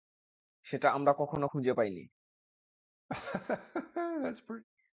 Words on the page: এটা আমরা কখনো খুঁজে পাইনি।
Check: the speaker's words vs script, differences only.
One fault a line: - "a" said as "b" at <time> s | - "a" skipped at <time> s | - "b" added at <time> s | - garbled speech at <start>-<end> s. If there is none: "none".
- "এটা" said as "সেটা" at 0.7 s